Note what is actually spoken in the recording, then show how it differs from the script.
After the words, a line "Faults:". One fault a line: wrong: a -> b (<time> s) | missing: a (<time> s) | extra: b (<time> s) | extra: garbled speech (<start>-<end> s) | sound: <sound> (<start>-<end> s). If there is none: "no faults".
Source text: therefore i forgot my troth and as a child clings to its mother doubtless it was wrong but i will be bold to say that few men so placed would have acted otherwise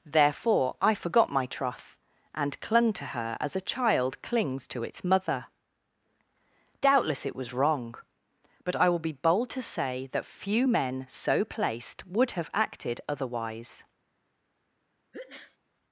therefore i forgot my troth and clung to her as a child clings to its mother doubtless it was wrong but i will be bold to say that few men so placed would have acted otherwise
Faults:
extra: clung to her (2.6 s)
sound: sneeze (15.1-15.6 s)